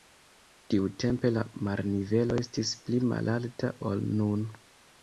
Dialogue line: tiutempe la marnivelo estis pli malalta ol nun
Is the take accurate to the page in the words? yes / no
yes